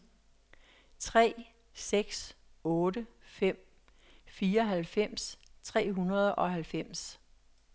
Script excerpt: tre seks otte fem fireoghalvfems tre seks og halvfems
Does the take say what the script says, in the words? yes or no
no